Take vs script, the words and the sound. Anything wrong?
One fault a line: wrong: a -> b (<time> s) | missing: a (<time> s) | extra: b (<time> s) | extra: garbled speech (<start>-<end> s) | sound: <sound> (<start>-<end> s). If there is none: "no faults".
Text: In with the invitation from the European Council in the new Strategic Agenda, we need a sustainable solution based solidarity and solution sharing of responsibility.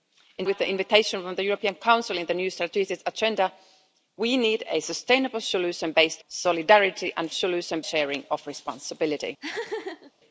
sound: laugh (9.4-10.1 s)